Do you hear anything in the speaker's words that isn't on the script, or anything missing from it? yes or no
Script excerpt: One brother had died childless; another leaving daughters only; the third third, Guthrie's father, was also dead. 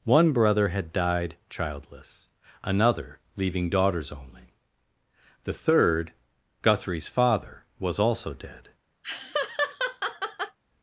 yes